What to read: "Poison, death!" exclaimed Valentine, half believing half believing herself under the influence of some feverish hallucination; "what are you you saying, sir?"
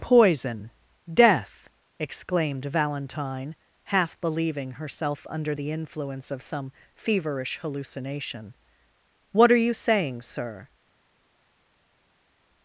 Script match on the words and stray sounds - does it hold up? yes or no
no